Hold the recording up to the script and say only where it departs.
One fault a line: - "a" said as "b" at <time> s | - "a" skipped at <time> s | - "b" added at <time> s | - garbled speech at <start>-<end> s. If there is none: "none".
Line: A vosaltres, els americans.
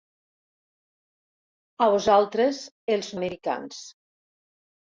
none